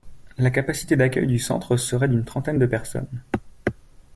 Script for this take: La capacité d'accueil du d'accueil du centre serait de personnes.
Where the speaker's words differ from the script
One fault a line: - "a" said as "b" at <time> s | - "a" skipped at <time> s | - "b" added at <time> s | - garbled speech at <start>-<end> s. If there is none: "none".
- "d'accueil du centre serait" said as "centre serait d'une trentaine" at 1.4 s